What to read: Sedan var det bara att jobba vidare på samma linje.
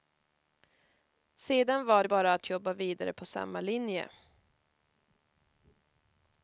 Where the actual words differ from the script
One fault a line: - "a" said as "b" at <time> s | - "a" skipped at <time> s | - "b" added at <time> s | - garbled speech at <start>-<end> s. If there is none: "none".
none